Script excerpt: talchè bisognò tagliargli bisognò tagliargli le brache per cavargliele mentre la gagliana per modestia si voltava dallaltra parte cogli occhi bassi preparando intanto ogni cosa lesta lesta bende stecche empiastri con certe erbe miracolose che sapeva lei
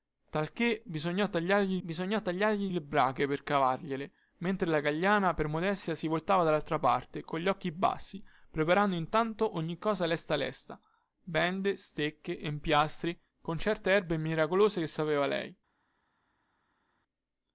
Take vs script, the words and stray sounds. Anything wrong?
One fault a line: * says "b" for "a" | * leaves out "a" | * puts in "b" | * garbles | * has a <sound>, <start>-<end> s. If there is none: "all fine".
all fine